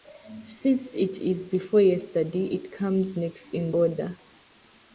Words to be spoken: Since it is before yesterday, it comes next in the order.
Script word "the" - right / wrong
wrong